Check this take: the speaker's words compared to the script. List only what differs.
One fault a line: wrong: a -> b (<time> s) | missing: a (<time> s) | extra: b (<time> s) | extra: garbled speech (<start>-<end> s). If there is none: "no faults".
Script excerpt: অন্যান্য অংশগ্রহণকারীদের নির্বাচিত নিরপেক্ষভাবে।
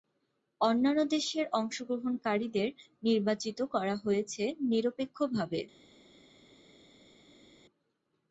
extra: দেশের (1.1 s)
extra: করা হয়েছে (3.7 s)